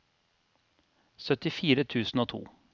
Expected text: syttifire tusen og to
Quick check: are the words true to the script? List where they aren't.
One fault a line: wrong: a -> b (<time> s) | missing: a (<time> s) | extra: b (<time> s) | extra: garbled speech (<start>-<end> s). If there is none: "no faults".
no faults